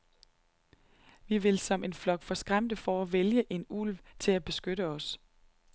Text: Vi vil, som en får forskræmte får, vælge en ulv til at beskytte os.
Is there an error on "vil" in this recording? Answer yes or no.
no